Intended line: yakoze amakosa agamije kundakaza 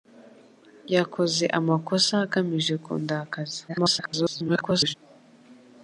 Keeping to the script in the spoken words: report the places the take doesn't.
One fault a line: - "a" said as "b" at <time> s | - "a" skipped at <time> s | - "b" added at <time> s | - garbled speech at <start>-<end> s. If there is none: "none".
- garbled speech at 3.7-4.9 s